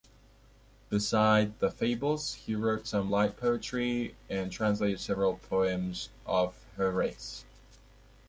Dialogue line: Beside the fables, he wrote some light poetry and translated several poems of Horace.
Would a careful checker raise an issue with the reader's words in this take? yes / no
no